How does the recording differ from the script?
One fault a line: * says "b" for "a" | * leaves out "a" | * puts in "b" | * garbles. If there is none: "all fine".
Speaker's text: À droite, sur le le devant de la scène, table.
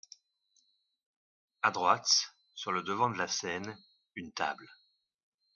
* leaves out "le"
* puts in "une"